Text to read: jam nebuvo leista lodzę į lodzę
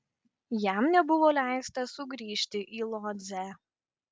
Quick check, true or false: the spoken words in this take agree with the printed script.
false